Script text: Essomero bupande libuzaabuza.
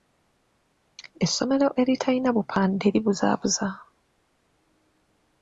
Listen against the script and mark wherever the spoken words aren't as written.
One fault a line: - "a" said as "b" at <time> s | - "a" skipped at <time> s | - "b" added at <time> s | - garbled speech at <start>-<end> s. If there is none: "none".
- "eritalina" added at 1.8 s